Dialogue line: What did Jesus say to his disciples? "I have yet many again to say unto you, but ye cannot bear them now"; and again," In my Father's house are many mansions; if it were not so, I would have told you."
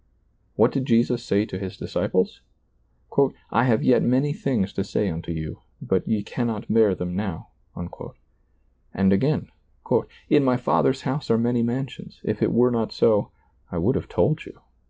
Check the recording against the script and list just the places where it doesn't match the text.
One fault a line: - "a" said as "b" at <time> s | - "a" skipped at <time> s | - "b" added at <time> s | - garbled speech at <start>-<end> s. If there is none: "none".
- "again" said as "things" at 4.3 s